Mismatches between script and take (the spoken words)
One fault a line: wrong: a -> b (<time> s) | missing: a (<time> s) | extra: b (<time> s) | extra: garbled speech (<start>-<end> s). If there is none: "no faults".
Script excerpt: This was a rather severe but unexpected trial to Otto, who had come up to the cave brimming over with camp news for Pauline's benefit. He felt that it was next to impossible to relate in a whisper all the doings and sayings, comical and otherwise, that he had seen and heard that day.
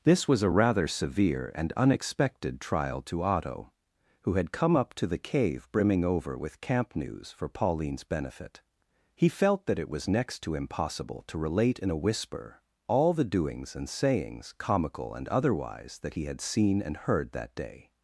wrong: but -> and (1.5 s)